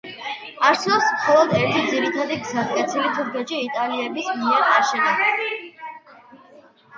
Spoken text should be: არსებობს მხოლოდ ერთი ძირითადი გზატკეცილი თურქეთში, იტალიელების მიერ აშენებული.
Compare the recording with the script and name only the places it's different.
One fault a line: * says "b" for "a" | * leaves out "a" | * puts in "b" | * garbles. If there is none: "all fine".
all fine